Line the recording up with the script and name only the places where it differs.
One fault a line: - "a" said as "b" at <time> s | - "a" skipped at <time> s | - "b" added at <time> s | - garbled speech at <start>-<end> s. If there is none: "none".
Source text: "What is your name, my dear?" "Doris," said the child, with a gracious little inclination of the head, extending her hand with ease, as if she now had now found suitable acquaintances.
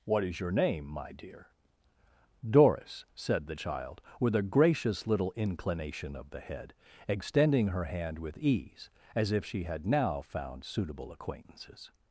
- "now" skipped at 9.6 s